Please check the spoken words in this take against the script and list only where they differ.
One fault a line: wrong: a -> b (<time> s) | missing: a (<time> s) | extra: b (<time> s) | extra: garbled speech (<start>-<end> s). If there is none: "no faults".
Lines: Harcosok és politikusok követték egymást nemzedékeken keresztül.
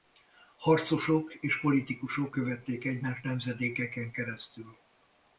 no faults